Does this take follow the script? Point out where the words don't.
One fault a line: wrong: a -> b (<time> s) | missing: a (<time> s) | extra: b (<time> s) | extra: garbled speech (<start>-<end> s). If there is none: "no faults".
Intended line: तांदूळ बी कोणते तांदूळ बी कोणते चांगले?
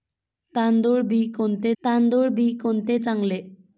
no faults